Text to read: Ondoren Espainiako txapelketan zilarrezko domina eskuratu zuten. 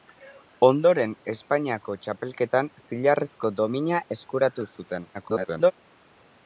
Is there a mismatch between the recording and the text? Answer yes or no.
yes